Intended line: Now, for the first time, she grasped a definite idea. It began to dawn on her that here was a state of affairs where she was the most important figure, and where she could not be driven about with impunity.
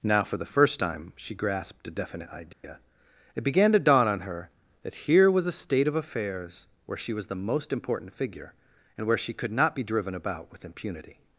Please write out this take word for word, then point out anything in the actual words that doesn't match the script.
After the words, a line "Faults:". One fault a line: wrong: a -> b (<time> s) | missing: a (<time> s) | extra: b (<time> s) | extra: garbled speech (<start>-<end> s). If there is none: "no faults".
Now, for the first time, she grasped a definite idea. It began to dawn on her that here was a state of affairs where she was the most important figure, and where she could not be driven about with impunity.
Faults:
no faults